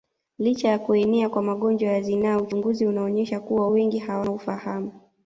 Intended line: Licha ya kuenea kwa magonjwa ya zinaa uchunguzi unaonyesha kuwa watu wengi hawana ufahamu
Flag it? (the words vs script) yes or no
yes